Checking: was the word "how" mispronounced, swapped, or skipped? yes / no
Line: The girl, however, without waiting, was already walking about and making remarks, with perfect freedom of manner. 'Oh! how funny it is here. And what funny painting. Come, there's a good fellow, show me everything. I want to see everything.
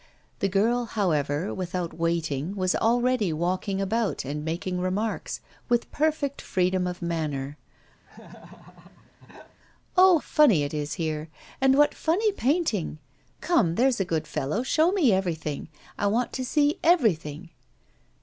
yes